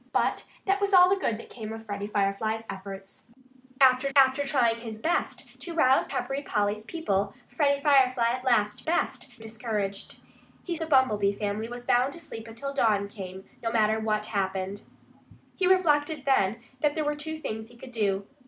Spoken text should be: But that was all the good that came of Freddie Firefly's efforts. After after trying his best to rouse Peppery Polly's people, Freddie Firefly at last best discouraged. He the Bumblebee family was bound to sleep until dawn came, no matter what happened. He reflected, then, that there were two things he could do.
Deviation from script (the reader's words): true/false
false